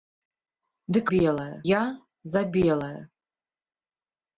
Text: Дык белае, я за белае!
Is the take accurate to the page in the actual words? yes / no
yes